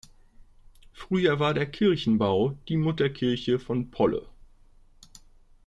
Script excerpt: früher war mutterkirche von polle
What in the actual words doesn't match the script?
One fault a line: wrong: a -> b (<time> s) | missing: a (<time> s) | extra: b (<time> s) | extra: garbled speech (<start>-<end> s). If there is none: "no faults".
extra: der kirchenbau die (1.5 s)